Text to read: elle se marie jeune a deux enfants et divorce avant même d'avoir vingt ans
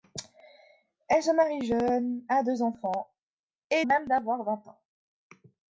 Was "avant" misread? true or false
true